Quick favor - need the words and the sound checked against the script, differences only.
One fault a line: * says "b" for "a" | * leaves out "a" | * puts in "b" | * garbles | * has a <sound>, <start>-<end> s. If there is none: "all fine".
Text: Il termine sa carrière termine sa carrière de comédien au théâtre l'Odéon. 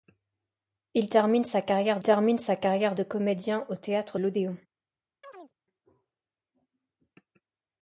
* has a chirp, 5.2-5.5 s